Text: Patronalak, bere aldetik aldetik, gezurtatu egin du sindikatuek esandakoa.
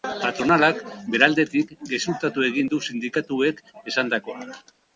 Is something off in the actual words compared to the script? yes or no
yes